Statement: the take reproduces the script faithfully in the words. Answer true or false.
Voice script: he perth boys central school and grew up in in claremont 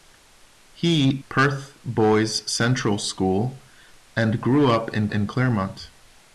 true